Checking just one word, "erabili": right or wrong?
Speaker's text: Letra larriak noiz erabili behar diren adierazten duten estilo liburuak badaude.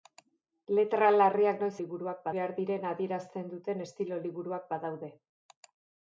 wrong